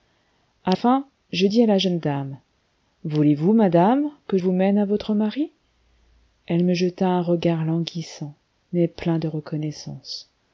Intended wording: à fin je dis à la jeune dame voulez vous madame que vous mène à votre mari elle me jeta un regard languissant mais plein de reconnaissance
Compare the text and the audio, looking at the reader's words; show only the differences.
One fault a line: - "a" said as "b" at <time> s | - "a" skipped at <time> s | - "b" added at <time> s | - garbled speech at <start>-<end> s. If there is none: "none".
none